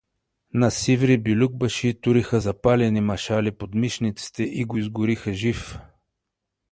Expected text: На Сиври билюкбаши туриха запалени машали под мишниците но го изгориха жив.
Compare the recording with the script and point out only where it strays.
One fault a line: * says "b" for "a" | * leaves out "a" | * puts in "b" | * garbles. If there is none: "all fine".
* says "и" for "но"